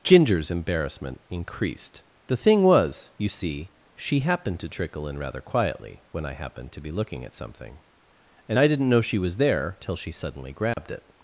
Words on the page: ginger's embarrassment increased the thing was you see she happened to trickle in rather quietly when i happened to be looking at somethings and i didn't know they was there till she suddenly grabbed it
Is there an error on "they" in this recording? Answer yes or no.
yes